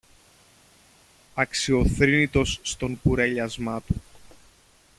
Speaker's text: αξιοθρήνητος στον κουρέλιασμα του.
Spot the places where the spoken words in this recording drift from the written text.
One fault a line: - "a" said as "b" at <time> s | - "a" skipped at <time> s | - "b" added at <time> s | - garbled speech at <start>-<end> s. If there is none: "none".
none